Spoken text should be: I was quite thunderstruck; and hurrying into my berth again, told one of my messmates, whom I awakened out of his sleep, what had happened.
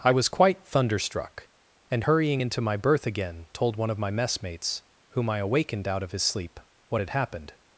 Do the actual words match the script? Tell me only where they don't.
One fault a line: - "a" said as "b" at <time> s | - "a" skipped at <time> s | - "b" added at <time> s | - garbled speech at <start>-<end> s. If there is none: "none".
none